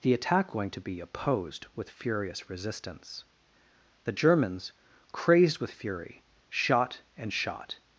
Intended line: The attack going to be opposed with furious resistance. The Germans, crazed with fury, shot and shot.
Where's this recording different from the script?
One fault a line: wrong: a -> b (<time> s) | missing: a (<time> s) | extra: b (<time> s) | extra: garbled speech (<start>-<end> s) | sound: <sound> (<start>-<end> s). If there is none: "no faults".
no faults